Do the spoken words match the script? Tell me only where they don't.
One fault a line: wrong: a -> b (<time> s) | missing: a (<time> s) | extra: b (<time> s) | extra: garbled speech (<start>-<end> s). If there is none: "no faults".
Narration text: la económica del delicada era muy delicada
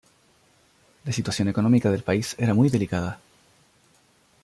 extra: situación (1.1 s)
wrong: delicada -> país (2.0 s)